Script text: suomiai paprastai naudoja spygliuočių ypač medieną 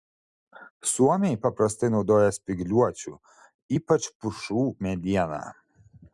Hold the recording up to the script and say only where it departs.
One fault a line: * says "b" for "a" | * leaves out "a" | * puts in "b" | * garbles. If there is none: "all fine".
* puts in "pušų"